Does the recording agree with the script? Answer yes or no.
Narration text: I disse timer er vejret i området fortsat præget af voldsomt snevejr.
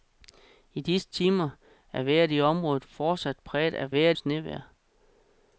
no